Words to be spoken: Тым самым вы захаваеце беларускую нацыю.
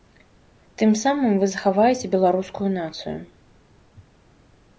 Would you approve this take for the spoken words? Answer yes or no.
yes